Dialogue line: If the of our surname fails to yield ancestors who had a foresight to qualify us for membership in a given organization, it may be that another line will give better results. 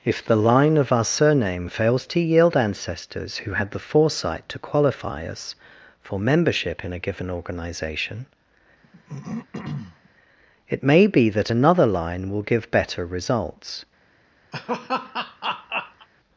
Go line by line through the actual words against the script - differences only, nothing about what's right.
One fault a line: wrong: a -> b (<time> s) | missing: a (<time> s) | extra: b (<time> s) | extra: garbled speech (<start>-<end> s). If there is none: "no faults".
extra: line (0.3 s)
wrong: a -> the (3.7 s)